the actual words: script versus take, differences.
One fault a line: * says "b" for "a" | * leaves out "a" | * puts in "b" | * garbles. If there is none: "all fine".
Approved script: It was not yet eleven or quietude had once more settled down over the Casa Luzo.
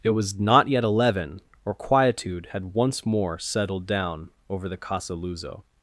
all fine